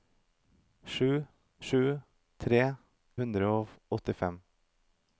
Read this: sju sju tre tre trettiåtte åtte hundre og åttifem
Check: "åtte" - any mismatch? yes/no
yes